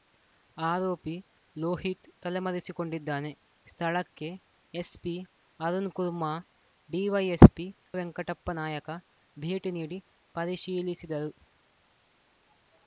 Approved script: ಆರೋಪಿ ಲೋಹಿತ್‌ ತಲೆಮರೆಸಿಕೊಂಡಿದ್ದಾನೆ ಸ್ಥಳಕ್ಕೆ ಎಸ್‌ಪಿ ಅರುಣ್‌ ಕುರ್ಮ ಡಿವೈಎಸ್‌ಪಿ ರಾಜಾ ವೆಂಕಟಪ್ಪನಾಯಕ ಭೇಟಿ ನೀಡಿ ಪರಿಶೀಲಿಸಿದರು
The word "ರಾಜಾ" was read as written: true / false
false